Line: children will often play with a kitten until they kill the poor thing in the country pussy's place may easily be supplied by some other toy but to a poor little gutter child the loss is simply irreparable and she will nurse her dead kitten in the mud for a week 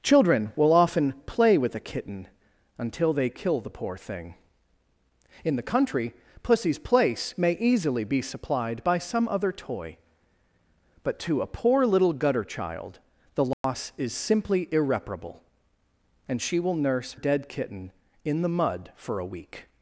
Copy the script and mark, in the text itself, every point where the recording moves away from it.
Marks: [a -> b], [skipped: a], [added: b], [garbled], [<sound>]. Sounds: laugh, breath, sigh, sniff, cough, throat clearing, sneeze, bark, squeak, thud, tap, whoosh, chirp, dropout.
children will often play with a kitten until they kill the poor thing in the country pussy's place may easily be supplied by some other toy but to a poor little gutter child the loss [dropout] is simply irreparable and she will nurse [skipped: her] dead kitten in the mud for a week